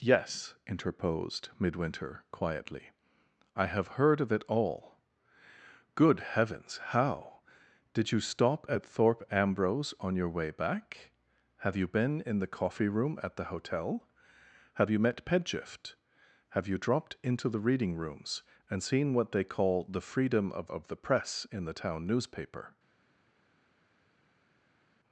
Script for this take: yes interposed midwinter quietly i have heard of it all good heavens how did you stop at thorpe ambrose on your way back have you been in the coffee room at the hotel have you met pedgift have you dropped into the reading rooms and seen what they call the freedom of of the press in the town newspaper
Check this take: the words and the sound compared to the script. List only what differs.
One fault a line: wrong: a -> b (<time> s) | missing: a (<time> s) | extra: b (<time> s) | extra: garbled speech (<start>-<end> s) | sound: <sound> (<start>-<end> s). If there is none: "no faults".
no faults